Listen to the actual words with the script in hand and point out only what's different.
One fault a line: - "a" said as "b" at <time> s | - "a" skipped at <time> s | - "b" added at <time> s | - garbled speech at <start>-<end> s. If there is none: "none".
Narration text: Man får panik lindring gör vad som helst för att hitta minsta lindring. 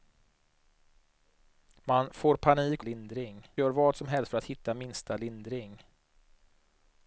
none